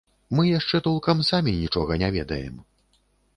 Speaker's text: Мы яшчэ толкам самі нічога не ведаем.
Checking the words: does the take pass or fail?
pass